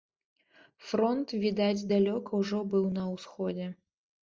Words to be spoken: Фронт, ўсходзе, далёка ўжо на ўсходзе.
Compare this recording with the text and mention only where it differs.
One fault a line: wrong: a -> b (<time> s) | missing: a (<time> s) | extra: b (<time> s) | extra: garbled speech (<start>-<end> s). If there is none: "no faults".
wrong: ўсходзе -> відаць (1.4 s)
extra: быў (2.7 s)